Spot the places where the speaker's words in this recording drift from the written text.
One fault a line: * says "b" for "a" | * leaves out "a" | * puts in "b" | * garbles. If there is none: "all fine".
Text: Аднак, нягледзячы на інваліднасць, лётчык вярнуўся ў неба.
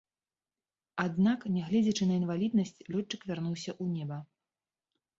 all fine